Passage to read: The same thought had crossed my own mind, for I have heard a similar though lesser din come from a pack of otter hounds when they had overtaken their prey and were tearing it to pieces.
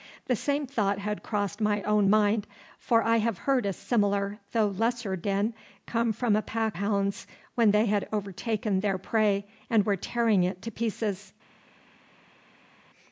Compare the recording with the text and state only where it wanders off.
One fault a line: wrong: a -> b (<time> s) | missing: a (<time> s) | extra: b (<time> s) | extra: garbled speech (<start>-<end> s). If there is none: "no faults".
missing: of otter (6.8 s)